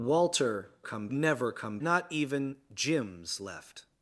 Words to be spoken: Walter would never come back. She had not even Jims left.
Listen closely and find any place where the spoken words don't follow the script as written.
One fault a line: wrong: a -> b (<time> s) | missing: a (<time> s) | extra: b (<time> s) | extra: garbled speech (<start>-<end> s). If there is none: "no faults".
wrong: would -> come (0.8 s)
missing: back She had (1.8 s)